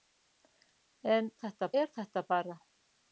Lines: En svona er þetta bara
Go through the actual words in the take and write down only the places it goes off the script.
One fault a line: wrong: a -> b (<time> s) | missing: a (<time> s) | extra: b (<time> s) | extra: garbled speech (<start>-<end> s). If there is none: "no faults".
wrong: svona -> þetta (1.4 s)